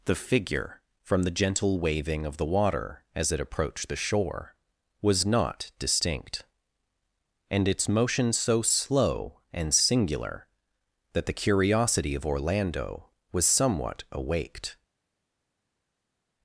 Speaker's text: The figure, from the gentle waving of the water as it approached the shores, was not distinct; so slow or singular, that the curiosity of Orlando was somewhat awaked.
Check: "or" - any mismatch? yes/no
yes